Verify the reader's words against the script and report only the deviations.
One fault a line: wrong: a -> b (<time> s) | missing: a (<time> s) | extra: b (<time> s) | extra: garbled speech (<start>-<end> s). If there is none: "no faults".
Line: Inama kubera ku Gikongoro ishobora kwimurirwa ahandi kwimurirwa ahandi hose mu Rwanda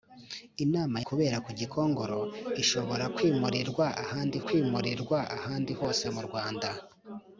no faults